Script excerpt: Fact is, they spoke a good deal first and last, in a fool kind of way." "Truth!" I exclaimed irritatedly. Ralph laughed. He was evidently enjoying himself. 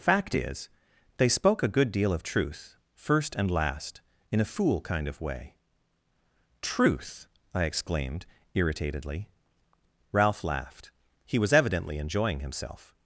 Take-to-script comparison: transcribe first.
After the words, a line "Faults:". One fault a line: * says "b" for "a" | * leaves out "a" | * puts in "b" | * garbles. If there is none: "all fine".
Fact is, they spoke a good deal of truth, first and last, in a fool kind of way." "Truth!" I exclaimed irritatedly. Ralph laughed. He was evidently enjoying himself.
Faults:
* puts in "of truth"